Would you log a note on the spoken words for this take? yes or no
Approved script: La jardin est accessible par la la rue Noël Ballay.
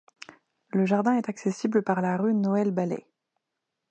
yes